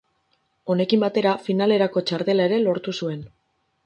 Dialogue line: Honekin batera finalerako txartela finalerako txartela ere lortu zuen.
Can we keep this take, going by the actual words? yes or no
no